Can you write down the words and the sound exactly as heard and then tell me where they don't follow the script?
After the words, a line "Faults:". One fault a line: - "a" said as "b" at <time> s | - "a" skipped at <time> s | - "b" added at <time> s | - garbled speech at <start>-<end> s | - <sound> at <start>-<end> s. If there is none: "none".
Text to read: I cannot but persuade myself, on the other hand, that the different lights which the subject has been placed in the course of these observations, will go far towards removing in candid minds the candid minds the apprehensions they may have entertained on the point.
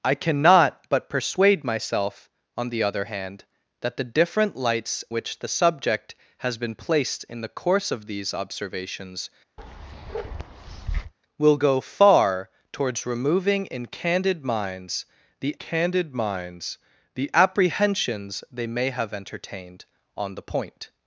I cannot but persuade myself, on the other hand, that the different lights which the subject has been placed in the course of these observations, will go far towards removing in candid minds the candid minds the apprehensions they may have entertained on the point.
Faults:
- bark at 9.6-11.1 s